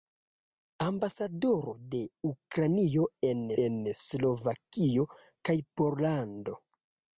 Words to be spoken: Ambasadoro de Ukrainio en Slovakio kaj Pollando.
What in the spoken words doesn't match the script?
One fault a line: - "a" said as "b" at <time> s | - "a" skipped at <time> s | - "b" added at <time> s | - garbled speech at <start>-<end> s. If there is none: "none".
- "en" added at 3.7 s